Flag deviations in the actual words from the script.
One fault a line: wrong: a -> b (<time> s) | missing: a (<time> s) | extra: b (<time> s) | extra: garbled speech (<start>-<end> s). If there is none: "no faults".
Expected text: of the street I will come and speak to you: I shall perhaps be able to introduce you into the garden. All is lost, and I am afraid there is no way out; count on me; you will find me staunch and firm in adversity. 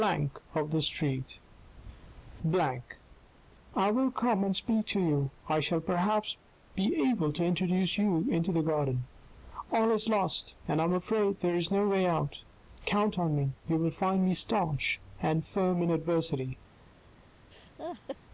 no faults